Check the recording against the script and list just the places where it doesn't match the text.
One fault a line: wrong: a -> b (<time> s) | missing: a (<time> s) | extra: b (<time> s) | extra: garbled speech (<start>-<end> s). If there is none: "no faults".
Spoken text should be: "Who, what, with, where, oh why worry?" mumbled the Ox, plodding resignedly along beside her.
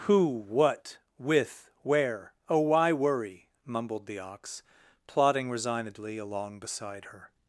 no faults